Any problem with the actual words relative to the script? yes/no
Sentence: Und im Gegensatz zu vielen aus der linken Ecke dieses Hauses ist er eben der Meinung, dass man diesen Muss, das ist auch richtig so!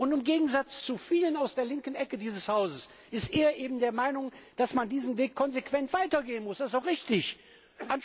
yes